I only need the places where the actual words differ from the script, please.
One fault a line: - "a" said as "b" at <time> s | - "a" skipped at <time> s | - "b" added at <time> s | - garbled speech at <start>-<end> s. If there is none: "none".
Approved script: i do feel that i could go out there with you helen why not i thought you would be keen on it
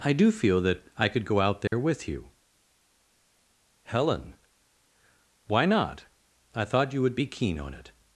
none